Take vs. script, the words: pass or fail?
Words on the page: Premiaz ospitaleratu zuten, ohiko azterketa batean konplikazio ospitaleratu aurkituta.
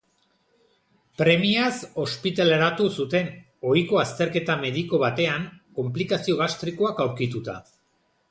fail